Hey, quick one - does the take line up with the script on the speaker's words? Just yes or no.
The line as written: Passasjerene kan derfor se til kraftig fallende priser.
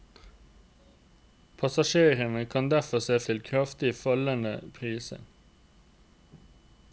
yes